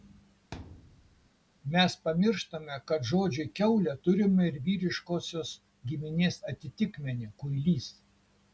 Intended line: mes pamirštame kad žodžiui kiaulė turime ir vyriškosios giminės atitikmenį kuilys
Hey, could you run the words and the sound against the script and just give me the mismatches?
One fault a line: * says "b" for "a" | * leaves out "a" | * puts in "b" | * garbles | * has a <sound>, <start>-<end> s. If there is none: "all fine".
* has a thud, 0.5-1.3 s